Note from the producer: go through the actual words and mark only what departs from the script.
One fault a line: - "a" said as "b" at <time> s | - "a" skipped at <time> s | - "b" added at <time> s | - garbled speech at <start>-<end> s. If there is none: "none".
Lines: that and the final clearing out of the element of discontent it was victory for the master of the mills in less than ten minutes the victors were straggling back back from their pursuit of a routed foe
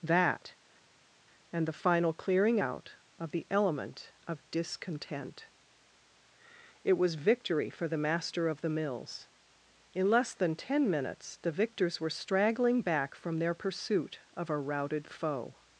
- "back" skipped at 13.2 s